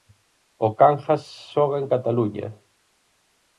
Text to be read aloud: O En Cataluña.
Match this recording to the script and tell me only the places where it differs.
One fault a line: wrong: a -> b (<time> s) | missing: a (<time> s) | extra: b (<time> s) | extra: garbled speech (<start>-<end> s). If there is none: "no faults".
extra: Cangas xoga (0.8 s)